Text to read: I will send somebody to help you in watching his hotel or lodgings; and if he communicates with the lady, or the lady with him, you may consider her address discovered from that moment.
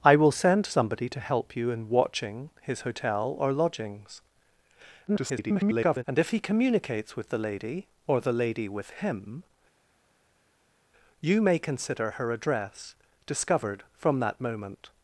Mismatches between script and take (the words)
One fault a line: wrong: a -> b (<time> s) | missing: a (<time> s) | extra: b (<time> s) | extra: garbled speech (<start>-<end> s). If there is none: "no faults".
extra: garbled speech (5.1-6.0 s)